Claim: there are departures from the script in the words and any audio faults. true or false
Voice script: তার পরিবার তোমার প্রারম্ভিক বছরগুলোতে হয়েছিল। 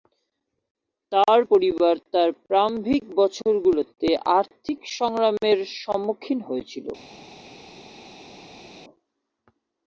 true